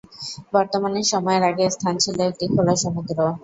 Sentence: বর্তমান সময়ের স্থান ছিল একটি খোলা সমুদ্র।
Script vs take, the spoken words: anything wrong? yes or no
yes